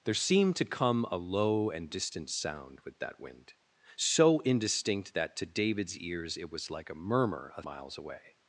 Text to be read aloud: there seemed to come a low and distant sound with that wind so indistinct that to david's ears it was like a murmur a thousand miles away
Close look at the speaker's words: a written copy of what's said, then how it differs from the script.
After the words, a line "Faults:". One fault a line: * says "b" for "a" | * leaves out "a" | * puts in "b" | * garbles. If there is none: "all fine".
there seemed to come a low and distant sound with that wind so indistinct that to david's ears it was like a murmur a miles away
Faults:
* leaves out "thousand"